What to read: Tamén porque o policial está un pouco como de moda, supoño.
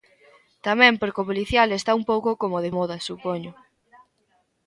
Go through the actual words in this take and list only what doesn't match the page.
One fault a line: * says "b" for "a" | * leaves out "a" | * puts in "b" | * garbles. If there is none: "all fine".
all fine